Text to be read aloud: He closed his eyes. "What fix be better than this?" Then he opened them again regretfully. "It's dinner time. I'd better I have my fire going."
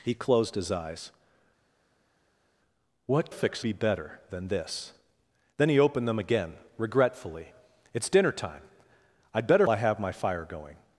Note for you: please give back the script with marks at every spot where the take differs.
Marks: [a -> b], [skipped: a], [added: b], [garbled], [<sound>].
He closed his eyes. "What fix be better than this?" Then he opened them again regretfully. "It's dinner time. I'd better I have my fire going."